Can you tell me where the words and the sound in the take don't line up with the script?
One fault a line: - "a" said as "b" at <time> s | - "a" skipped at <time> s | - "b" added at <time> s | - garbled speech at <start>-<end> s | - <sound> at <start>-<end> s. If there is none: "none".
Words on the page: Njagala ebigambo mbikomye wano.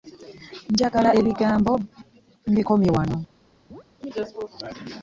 - chirp at 3.7-3.8 s